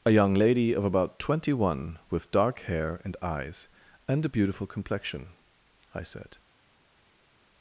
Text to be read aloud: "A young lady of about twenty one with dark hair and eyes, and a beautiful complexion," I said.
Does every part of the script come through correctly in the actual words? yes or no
yes